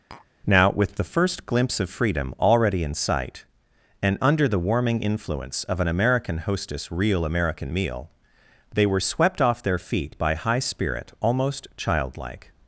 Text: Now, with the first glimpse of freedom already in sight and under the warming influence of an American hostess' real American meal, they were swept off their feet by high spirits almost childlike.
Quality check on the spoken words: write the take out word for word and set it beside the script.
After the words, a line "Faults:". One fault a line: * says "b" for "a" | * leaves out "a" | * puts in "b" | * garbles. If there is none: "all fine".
Now, with the first glimpse of freedom already in sight and under the warming influence of an American hostess' real American meal, they were swept off their feet by high spirit almost childlike.
Faults:
* says "spirit" for "spirits"